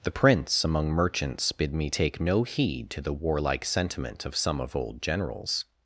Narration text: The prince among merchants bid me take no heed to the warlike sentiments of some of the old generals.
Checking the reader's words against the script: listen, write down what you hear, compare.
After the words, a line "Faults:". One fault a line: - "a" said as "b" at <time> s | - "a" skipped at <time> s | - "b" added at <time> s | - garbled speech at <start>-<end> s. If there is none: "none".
The prince among merchants bid me take no heed to the warlike sentiment of some of old generals.
Faults:
- "sentiments" said as "sentiment" at 3.6 s
- "the" skipped at 4.8 s